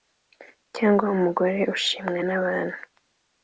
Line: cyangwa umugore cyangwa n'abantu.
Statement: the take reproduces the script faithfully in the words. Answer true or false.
false